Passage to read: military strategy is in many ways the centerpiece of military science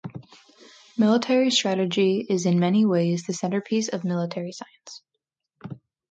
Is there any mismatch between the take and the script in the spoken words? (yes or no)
no